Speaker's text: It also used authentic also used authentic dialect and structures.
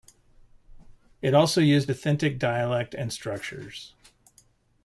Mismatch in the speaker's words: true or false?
true